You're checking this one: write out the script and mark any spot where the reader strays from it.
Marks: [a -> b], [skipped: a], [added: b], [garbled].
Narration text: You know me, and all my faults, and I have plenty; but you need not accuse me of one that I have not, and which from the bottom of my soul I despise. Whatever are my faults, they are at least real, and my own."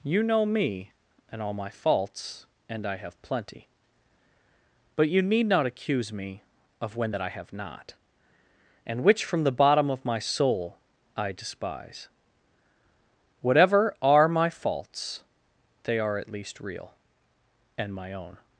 You know me, and all my faults, and I have plenty; but you need not accuse me of [one -> when] that I have not, and which from the bottom of my soul I despise. Whatever are my faults, they are at least real, and my own."